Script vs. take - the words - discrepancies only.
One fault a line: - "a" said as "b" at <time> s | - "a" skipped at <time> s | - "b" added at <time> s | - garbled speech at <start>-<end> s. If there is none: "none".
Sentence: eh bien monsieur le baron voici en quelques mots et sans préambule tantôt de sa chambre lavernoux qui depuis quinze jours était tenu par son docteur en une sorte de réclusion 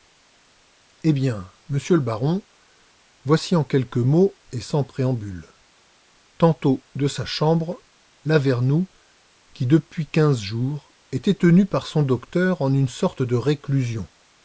none